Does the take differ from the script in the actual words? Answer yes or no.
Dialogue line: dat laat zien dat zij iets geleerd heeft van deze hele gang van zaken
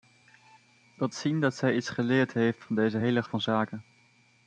yes